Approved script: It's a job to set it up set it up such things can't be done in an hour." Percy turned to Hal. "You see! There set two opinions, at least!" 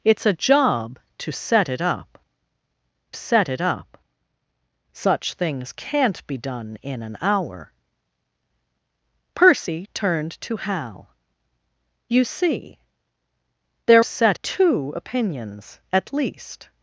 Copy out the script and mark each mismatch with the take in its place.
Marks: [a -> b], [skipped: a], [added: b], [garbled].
It's a job to set it up set it up such things can't be done in an hour." Percy turned to Hal. "You see! There set two opinions, at least!"